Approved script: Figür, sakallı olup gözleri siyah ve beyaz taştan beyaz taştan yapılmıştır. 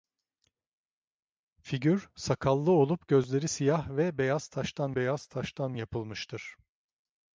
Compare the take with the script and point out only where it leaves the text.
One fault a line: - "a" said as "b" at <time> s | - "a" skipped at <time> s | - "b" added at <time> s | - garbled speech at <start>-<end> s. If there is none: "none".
none